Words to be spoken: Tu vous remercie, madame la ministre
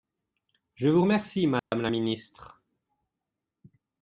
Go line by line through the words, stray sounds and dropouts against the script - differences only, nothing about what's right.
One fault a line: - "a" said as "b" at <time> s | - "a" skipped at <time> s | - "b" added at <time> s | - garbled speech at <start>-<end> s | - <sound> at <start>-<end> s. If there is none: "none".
- "Tu" said as "Je" at 0.7 s
- dropout at 1.6-1.7 s